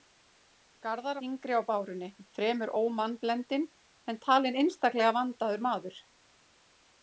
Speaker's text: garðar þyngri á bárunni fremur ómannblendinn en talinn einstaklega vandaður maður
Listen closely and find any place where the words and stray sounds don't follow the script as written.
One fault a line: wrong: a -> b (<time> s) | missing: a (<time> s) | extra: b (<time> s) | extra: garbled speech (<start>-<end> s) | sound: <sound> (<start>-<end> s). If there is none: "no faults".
no faults